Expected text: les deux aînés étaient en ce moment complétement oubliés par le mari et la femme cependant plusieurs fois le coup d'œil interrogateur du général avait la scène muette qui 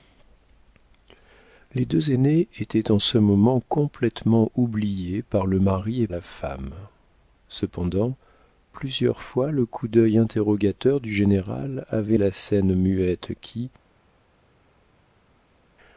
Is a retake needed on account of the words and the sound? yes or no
no